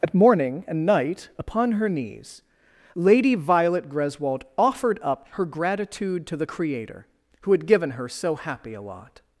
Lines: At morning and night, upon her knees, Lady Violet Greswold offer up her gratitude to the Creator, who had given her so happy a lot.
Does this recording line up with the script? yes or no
no